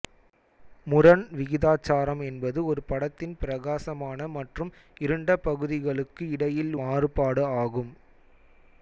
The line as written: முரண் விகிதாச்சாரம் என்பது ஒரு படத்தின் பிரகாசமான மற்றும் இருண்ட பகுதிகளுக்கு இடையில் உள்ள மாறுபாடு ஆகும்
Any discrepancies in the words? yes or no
yes